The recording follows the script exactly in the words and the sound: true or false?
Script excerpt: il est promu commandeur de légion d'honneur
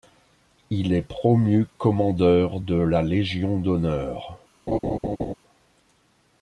false